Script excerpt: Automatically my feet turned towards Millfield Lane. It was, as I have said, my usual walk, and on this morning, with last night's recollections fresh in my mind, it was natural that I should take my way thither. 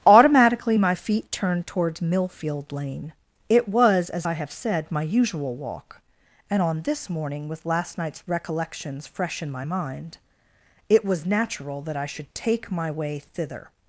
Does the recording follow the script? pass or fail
pass